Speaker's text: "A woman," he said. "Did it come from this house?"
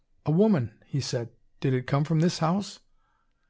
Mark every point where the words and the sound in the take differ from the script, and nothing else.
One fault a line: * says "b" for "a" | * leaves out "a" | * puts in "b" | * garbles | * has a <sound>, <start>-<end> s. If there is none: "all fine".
all fine